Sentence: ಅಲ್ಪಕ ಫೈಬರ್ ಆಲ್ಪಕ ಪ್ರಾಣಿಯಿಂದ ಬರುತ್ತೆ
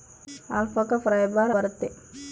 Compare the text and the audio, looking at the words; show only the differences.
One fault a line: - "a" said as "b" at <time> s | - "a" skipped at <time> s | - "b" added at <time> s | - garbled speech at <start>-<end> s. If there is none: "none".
- "ಆಲ್ಪಕ ಪ್ರಾಣಿಯಿಂದ" skipped at 1.5 s